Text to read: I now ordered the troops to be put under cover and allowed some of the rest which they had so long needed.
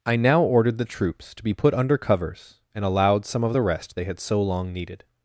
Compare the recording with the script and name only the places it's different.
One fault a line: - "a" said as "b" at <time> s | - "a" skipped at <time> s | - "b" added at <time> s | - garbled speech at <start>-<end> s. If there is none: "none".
- "cover" said as "covers" at 2.0 s
- "which" skipped at 4.0 s